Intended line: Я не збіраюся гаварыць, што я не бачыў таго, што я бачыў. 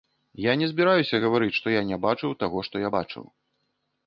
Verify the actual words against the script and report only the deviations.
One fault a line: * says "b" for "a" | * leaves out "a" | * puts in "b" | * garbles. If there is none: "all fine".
all fine